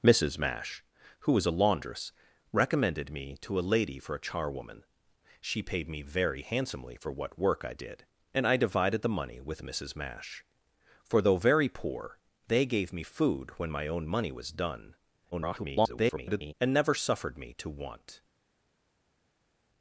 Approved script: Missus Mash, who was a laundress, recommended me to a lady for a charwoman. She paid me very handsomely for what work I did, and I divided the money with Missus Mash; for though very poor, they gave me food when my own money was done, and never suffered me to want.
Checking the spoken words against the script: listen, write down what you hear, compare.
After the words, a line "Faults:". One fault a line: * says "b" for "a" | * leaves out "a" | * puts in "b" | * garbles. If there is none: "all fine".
Missus Mash, who was a laundress, recommended me to a lady for a charwoman. She paid me very handsomely for what work I did, and I divided the money with Missus Mash; for though very poor, they gave me food when my own money was done, [garbled] and never suffered me to want.
Faults:
* garbles